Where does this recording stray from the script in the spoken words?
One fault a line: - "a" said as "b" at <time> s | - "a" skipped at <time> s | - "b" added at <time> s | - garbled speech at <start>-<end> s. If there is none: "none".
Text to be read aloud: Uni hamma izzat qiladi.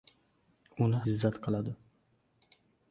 - "hamma" skipped at 1.0 s